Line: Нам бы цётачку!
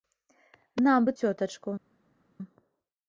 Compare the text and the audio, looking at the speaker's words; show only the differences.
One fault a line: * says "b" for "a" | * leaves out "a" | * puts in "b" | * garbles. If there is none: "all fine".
all fine